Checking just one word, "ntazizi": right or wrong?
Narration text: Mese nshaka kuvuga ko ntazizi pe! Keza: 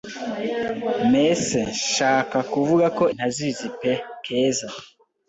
right